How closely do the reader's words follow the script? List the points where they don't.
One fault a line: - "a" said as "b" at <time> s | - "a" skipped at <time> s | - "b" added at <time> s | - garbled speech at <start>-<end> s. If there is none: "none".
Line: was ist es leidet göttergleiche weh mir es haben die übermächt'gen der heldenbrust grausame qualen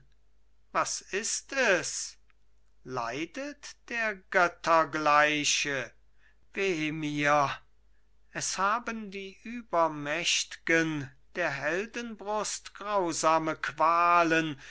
- "der" added at 3.9 s